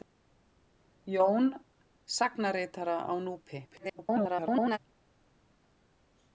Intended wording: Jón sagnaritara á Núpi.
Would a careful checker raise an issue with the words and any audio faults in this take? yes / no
yes